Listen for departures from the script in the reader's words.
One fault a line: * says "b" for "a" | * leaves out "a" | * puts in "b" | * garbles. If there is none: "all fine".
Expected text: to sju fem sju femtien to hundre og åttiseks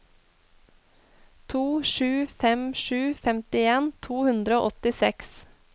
all fine